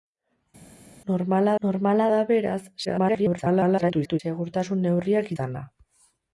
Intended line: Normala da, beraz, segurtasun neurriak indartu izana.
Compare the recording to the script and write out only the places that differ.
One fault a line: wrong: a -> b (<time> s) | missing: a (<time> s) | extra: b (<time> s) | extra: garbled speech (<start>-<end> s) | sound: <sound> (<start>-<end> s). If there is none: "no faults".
extra: normala (1.7 s)
extra: garbled speech (2.8-4.2 s)
missing: indartu (5.3 s)